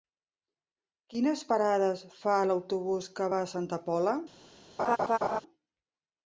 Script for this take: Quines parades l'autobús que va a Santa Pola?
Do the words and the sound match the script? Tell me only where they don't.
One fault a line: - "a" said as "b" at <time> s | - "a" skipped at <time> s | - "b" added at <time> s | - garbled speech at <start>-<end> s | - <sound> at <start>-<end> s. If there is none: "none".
- "fa" added at 2.2 s
- laugh at 4.8-5.4 s